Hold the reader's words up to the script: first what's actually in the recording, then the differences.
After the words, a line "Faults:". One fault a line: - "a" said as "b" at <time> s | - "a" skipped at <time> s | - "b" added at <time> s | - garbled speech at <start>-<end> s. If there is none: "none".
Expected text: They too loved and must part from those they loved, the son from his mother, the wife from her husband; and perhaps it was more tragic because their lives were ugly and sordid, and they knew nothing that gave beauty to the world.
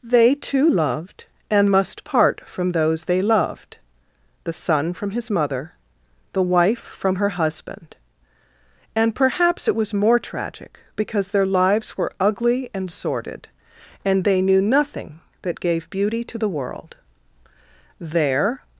They too loved and must part from those they loved, the son from his mother, the wife from her husband; and perhaps it was more tragic because their lives were ugly and sordid, and they knew nothing that gave beauty to the world. There
Faults:
- "There" added at 18.0 s